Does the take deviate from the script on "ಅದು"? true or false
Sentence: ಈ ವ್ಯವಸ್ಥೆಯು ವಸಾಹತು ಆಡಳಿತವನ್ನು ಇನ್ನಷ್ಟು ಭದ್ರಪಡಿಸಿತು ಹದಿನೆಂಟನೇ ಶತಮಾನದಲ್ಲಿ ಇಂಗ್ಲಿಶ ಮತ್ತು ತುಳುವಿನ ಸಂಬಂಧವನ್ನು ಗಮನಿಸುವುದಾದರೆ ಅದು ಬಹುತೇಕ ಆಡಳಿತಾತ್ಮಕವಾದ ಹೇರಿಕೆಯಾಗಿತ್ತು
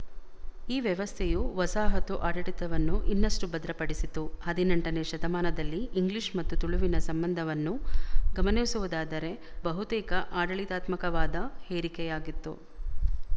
true